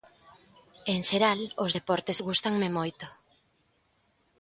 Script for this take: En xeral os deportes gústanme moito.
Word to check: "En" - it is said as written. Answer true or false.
true